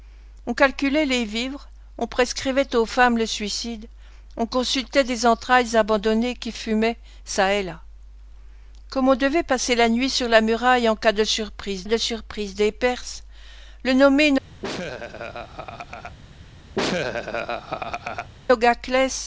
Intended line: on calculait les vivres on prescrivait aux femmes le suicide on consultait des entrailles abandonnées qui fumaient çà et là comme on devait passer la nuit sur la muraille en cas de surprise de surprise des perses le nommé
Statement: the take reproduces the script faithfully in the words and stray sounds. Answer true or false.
false